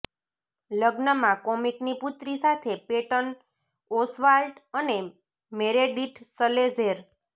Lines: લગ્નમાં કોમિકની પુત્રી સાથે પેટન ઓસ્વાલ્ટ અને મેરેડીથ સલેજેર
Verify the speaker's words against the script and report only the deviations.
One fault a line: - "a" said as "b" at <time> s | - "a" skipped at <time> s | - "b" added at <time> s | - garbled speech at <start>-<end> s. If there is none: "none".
none